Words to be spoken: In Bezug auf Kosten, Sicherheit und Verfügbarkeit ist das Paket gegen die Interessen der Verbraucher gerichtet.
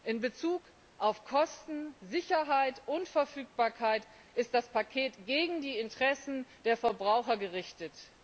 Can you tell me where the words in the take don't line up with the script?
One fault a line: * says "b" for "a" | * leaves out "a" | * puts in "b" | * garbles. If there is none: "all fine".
all fine